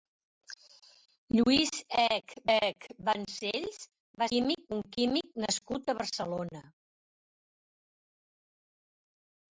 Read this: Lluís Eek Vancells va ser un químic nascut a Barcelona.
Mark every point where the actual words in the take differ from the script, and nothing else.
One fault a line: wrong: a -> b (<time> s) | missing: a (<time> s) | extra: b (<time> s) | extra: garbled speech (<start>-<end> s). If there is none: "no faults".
extra: Eek (2.5 s)
wrong: ser -> químic (4.3 s)